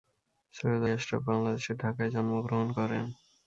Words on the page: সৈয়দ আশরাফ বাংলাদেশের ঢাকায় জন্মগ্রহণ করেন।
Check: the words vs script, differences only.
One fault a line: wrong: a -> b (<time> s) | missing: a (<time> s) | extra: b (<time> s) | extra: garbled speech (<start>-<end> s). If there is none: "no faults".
no faults